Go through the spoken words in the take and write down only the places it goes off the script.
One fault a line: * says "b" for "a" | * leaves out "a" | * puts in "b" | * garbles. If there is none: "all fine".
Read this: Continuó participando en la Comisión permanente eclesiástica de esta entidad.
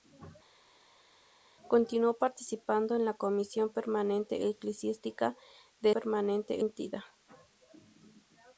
* says "permanente" for "esta"